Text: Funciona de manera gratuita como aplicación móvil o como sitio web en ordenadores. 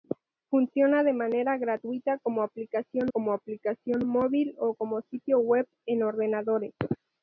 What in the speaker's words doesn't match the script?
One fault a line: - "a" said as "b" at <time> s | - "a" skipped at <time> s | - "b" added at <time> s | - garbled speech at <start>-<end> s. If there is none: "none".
- "como aplicación" added at 3.1 s